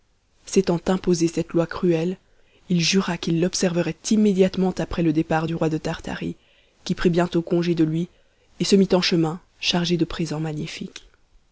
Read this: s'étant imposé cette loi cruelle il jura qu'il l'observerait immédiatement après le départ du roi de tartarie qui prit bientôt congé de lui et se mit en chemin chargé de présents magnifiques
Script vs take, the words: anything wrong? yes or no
no